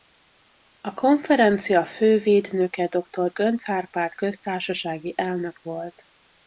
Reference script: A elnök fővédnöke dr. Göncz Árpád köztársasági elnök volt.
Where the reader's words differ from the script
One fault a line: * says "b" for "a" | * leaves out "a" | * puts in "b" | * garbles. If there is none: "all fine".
* says "konferencia" for "elnök"